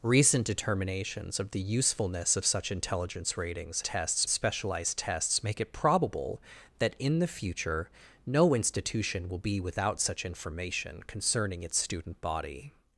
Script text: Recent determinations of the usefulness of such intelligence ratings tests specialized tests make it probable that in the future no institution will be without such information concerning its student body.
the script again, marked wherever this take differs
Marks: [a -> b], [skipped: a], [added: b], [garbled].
Recent determinations of the usefulness of such intelligence ratings tests specialized tests make it probable that in the future no institution will be without such information concerning its student body.